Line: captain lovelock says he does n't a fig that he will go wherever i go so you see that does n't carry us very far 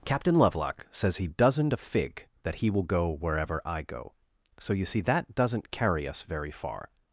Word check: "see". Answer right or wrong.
right